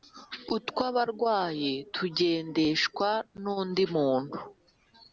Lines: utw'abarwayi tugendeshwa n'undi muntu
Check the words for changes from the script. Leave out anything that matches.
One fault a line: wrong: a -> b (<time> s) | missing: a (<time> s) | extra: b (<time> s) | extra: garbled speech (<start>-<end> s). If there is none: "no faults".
no faults